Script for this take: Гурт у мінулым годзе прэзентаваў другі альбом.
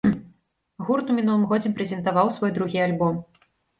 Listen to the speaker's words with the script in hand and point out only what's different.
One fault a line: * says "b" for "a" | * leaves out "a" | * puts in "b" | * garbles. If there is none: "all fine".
* puts in "свой"